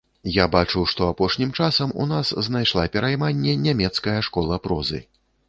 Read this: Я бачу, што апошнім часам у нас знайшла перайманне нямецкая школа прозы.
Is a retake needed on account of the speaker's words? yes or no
no